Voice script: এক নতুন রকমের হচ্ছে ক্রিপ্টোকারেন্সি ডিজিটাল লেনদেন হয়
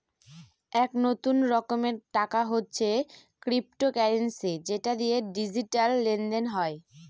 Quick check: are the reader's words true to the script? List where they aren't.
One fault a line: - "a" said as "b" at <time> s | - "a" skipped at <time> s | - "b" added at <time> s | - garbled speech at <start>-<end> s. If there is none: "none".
- "টাকা" added at 2.1 s
- "যেটা দিয়ে" added at 4.7 s